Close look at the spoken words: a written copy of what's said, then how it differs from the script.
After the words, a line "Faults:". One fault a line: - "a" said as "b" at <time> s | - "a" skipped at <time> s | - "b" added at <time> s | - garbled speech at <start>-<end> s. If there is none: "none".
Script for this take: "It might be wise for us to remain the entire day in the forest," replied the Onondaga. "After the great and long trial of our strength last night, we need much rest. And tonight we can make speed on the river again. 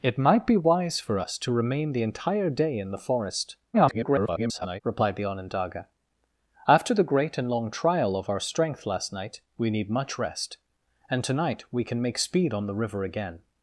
"It might be wise for us to remain the entire day in the forest," [garbled] replied the Onondaga. "After the great and long trial of our strength last night, we need much rest. And tonight we can make speed on the river again.
Faults:
- garbled speech at 3.7-4.8 s